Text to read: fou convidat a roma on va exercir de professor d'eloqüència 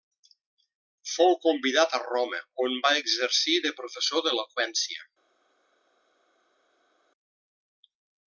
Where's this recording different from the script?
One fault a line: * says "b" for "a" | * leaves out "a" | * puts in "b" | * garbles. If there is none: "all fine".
all fine